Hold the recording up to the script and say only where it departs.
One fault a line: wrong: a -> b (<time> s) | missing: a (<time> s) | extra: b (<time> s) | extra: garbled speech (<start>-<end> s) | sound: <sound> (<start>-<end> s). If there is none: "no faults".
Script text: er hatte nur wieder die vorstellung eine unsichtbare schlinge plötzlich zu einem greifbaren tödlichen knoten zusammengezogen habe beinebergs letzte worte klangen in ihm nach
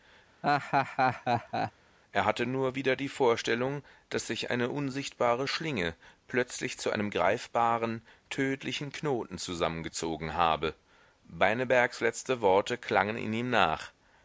sound: laugh (0.4-1.7 s)
extra: daß sich (4.1 s)